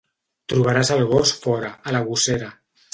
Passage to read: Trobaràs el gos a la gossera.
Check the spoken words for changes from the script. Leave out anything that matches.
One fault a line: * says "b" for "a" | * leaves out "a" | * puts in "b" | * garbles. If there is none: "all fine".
* puts in "fora"